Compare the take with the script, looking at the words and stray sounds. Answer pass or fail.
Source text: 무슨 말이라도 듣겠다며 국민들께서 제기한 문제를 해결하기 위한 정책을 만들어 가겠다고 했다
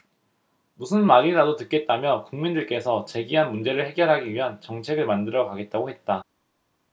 pass